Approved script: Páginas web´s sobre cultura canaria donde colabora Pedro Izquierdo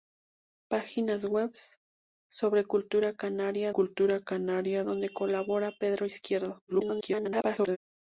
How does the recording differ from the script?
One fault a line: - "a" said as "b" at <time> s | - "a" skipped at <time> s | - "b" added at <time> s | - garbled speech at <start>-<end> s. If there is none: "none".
- "cultura canaria" added at 3.7 s
- garbled speech at 6.7-7.8 s